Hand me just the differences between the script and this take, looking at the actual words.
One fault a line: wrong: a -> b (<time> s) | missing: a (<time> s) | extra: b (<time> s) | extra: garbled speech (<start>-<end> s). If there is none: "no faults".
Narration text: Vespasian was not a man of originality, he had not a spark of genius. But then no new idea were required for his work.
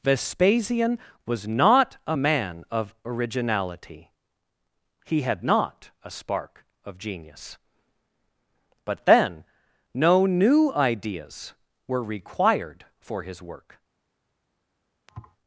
wrong: idea -> ideas (10.7 s)